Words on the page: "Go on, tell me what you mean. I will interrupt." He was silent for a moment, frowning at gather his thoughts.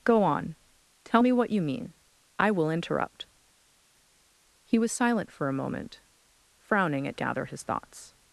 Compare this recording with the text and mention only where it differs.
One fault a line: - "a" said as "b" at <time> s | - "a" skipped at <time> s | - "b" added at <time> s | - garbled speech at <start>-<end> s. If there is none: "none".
none